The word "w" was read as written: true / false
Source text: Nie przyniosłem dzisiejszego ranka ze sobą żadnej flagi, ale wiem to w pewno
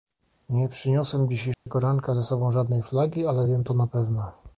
false